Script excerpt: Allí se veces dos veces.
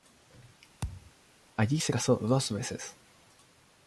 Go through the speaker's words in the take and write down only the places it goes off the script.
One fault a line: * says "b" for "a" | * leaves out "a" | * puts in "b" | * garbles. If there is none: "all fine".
* says "casó" for "veces"